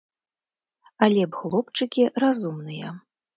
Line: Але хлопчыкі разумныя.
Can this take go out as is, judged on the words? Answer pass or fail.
pass